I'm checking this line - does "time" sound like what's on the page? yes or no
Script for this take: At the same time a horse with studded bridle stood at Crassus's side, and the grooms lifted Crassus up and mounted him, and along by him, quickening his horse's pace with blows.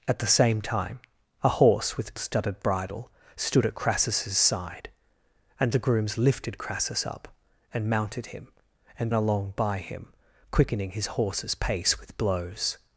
yes